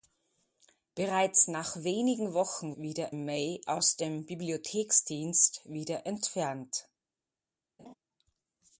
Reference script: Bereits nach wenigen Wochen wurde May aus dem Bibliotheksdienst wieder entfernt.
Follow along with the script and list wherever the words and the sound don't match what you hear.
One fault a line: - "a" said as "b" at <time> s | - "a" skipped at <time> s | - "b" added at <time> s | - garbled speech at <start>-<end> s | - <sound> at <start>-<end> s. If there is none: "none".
- "wurde" said as "wieder" at 2.7 s
- laugh at 7.8-7.9 s